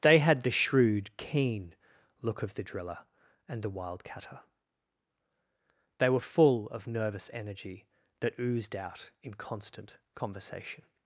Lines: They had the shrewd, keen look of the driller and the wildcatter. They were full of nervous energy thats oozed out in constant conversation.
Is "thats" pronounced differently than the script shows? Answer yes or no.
yes